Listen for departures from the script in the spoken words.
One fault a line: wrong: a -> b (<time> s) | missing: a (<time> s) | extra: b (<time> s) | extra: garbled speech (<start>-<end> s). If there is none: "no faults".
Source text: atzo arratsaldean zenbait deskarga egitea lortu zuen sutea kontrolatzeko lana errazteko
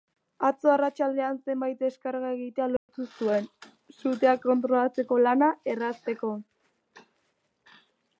no faults